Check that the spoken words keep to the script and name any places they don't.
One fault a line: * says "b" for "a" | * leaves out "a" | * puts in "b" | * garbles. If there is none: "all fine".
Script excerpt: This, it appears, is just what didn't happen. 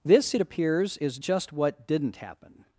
all fine